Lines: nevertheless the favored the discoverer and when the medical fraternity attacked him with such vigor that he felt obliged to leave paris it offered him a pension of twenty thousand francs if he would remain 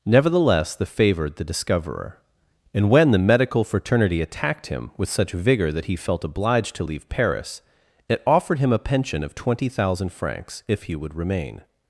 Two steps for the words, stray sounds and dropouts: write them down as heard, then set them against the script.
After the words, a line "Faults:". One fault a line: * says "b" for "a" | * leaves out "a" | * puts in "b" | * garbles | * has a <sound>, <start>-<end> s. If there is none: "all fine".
nevertheless the favored the discoverer and when the medical fraternity attacked him with such vigor that he felt obliged to leave paris it offered him a pension of twenty thousand francs if he would remain
Faults:
all fine